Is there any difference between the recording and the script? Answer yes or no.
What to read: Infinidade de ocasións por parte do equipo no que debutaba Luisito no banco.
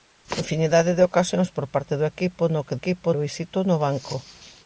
yes